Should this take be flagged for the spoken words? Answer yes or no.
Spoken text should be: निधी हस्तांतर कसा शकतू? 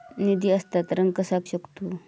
no